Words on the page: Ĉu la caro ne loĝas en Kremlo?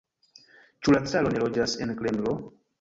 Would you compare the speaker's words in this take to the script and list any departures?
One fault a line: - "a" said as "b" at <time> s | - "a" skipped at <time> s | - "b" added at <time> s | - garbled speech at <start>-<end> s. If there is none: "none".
none